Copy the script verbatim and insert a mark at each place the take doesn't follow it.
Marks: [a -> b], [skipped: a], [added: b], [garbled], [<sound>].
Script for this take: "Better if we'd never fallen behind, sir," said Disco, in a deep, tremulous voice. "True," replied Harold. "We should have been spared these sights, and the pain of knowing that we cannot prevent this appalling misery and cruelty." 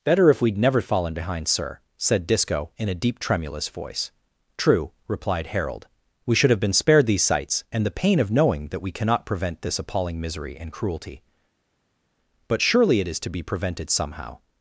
"Better if we'd never fallen behind, sir," said Disco, in a deep, tremulous voice. "True," replied Harold. "We should have been spared these sights, and the pain of knowing that we cannot prevent this appalling misery and cruelty." [added: But surely it is to be prevented somehow]